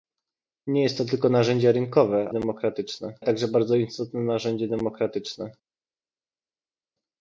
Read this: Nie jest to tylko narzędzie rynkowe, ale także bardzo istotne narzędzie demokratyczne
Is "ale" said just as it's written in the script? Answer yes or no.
no